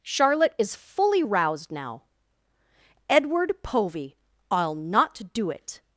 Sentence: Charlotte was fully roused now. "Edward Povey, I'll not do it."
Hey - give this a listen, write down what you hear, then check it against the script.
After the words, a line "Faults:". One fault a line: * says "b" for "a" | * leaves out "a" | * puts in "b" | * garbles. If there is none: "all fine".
Charlotte is fully roused now. "Edward Povey, I'll not do it."
Faults:
* says "is" for "was"